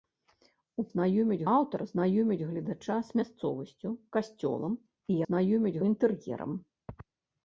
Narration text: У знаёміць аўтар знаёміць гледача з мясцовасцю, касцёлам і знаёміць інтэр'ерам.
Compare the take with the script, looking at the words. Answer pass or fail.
pass